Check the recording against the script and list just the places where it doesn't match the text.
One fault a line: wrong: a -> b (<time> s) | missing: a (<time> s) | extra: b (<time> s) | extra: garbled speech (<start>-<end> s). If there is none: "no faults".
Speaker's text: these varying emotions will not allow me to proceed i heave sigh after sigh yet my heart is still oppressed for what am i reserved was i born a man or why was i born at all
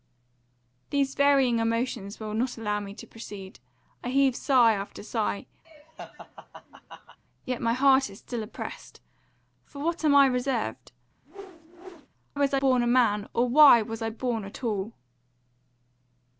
no faults